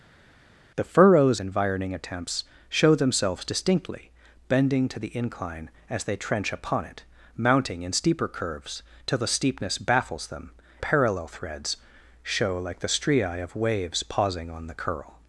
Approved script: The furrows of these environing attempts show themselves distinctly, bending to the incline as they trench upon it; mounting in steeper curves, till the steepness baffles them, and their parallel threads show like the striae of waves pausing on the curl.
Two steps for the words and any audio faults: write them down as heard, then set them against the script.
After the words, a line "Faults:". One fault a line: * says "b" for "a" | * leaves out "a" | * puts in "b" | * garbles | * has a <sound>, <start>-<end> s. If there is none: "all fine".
The furrows environing attempts show themselves distinctly, bending to the incline as they trench upon it; mounting in steeper curves, till the steepness baffles them, parallel threads show like the striae of waves pausing on the curl.
Faults:
* leaves out "of these"
* leaves out "and their"